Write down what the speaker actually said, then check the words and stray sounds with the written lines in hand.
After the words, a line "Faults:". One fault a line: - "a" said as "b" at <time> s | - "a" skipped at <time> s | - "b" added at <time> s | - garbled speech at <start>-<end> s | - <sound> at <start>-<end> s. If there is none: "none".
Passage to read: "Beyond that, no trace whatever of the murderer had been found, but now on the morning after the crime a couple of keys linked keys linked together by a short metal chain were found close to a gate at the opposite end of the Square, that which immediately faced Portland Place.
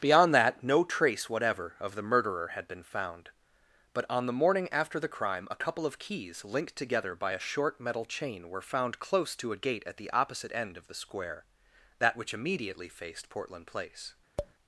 "Beyond that, no trace whatever of the murderer had been found, but on the morning after the crime a couple of keys linked together by a short metal chain were found close to a gate at the opposite end of the Square, that which immediately faced Portland Place.
Faults:
- "now" skipped at 4.1 s
- "keys linked" skipped at 6.7 s
- tap at 14.4-14.5 s